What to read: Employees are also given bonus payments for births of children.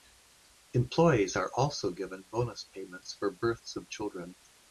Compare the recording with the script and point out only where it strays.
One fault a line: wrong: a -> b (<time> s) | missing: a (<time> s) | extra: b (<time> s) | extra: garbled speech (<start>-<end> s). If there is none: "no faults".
no faults